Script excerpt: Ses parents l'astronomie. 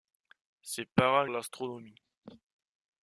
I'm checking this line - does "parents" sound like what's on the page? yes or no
yes